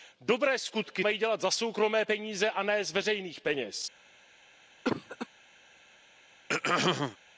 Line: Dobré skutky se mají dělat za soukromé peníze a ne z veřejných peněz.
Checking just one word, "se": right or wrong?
wrong